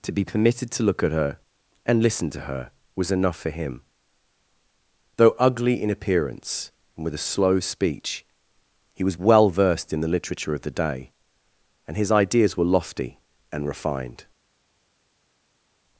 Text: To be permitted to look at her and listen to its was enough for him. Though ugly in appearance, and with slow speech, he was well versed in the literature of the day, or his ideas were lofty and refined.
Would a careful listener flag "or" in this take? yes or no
yes